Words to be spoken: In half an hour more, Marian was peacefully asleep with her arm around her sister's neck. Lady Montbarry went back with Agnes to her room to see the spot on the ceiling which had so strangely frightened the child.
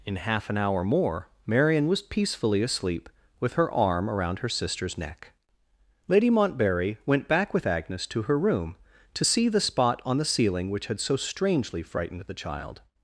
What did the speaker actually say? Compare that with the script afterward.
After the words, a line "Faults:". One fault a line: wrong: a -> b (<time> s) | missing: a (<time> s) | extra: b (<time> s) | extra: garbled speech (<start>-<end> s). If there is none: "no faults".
In half an hour more, Marian was peacefully asleep with her arm around her sister's neck. Lady Montbarry went back with Agnes to her room to see the spot on the ceiling which had so strangely frightened the child.
Faults:
no faults